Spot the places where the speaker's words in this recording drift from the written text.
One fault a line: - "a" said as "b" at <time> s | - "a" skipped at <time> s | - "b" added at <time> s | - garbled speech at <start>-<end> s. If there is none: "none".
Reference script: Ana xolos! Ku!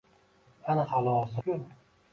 none